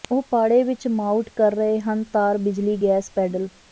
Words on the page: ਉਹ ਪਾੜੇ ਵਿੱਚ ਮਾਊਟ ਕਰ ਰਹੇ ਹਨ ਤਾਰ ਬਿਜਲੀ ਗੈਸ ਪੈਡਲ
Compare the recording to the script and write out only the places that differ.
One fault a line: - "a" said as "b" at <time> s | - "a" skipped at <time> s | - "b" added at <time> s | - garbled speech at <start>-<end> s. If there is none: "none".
none